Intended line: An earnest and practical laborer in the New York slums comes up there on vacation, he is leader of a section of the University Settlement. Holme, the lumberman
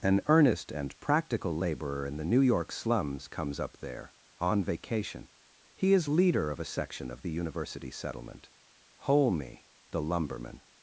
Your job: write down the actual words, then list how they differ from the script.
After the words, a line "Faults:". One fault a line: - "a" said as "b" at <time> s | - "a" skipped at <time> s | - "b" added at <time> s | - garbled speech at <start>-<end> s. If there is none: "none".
An earnest and practical laborer in the New York slums comes up there on vacation, he is leader of a section of the University Settlement. Holme, the lumberman
Faults:
none